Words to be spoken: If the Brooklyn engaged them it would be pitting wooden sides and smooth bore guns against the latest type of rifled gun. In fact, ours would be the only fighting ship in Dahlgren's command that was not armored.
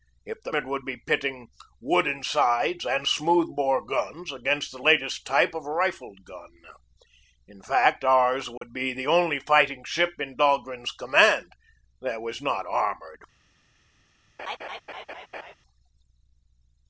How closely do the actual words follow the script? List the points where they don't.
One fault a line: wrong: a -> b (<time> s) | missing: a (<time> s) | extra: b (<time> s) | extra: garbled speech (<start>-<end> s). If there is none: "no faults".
missing: Brooklyn engaged them (0.5 s)